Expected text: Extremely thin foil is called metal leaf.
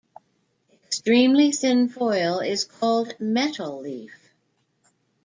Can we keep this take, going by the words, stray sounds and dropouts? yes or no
yes